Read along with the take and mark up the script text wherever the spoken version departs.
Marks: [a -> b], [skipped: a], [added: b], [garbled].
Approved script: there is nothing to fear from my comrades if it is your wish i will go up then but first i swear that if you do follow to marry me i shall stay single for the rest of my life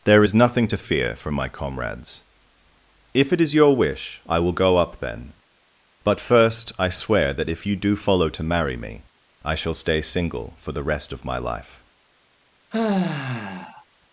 there is nothing to fear from my comrades if it is your wish i will go up then but first i swear that if you do follow to marry me i shall stay single for the rest of my life